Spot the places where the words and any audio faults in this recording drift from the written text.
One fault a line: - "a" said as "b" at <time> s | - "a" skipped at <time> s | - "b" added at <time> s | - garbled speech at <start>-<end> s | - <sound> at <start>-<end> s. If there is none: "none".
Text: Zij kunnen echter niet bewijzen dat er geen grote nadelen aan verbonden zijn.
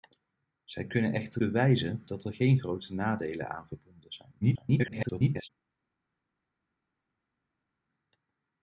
- "niet" skipped at 1.4 s
- garbled speech at 4.4-5.5 s